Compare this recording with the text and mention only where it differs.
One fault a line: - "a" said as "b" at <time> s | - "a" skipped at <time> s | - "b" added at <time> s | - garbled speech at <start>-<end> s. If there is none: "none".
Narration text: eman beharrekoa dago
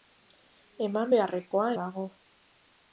none